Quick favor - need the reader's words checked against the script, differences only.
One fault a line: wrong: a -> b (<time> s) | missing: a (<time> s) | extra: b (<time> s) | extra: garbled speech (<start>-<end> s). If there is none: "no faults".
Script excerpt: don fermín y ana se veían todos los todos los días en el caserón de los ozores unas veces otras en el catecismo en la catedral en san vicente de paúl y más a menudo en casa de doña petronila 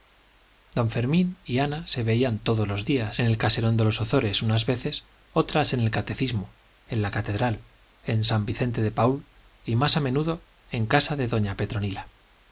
missing: todos los (2.9 s)